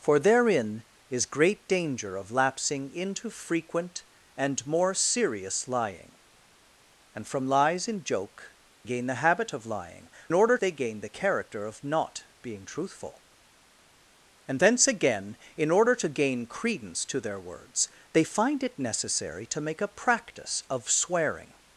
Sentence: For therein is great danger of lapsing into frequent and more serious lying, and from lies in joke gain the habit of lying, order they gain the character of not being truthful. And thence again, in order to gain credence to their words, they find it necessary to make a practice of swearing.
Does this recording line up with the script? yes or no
yes